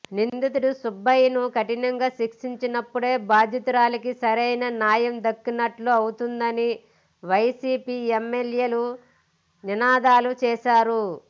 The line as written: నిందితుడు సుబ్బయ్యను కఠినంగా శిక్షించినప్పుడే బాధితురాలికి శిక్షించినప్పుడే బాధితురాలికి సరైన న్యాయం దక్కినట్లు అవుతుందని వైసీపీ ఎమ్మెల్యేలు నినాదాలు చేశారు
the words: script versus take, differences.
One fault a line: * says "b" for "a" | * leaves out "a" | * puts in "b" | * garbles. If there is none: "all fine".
* leaves out "శిక్షించినప్పుడే బాధితురాలికి"